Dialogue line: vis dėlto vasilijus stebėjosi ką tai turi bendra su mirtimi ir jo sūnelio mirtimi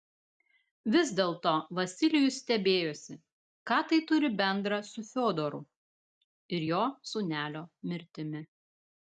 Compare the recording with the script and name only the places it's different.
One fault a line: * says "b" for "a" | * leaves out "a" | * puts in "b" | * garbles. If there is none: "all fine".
* says "fiodoru" for "mirtimi"